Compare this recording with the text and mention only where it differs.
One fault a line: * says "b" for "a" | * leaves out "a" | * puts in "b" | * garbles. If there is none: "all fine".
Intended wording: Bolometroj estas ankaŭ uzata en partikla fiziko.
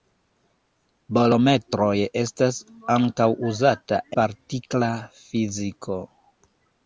* leaves out "en"